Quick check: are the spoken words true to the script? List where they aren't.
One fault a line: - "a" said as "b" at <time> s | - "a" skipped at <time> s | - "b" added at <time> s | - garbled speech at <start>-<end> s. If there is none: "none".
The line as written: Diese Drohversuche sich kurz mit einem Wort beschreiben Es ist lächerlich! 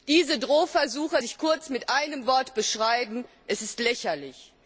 none